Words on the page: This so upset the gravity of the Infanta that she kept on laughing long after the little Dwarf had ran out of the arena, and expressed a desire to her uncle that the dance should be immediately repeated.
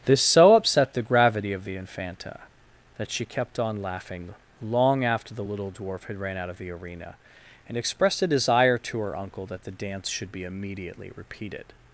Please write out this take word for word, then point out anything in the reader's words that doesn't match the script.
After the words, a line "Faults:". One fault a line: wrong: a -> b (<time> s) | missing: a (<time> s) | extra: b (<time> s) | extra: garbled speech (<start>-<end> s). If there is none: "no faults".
This so upset the gravity of the Infanta that she kept on laughing long after the little Dwarf had ran out of the arena, and expressed a desire to her uncle that the dance should be immediately repeated.
Faults:
no faults